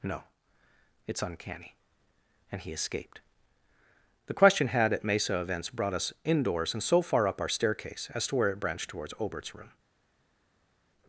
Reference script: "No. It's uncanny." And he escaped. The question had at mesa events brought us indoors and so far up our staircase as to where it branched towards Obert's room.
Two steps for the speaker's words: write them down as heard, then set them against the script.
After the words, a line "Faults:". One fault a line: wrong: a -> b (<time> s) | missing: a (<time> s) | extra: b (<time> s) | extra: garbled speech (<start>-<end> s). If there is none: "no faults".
"No. It's uncanny." And he escaped. The question had at mesa events brought us indoors and so far up our staircase as to where it branched towards Obert's room.
Faults:
no faults